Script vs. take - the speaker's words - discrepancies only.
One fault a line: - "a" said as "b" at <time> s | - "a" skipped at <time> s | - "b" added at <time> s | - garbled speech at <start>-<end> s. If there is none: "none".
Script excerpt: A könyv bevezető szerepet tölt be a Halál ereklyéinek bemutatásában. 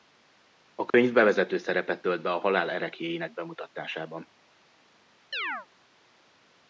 none